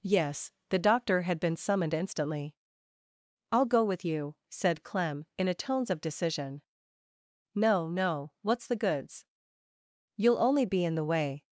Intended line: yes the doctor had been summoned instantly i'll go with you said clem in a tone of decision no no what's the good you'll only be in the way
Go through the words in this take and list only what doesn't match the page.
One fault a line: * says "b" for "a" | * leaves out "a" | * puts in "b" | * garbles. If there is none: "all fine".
* says "tones" for "tone"
* says "goods" for "good"